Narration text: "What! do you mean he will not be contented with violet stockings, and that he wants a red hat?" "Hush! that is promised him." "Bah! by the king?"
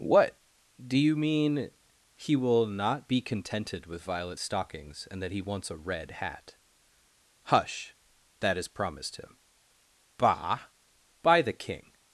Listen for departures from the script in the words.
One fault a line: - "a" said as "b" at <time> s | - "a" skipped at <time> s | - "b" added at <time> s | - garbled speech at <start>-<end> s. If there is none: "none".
none